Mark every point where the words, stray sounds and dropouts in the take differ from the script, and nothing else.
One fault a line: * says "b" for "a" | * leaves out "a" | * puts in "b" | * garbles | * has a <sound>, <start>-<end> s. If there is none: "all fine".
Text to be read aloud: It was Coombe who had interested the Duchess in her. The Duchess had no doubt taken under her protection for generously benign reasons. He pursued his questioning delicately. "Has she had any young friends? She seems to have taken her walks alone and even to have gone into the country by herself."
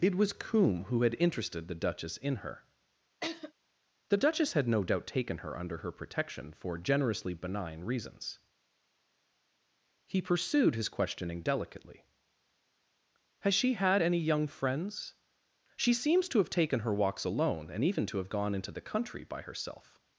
* has a laugh, 3.2-3.5 s
* puts in "her"